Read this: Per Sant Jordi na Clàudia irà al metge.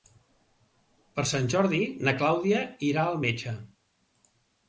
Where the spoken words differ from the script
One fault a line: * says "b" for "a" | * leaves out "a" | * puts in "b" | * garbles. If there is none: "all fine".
all fine